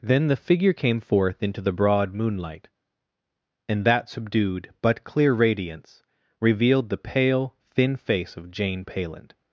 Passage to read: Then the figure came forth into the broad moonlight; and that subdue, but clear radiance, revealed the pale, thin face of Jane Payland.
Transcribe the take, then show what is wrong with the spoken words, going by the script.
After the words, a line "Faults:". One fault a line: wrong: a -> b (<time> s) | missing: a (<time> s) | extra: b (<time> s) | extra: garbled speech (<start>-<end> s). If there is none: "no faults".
Then the figure came forth into the broad moonlight; and that subdued, but clear radiance, revealed the pale, thin face of Jane Payland.
Faults:
wrong: subdue -> subdued (4.1 s)